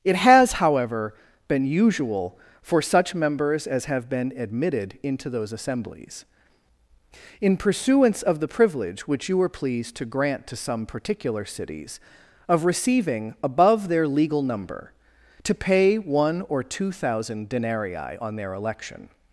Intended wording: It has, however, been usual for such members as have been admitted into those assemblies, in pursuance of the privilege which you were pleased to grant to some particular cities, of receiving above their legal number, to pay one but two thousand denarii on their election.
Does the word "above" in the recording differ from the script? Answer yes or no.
no